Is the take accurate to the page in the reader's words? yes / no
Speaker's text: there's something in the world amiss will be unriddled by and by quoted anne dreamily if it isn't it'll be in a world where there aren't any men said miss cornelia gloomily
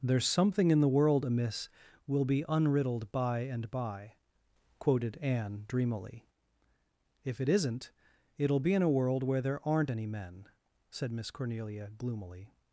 yes